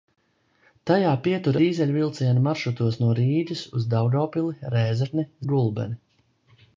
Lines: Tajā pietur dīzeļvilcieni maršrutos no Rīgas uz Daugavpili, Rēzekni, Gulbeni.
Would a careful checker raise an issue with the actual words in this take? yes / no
no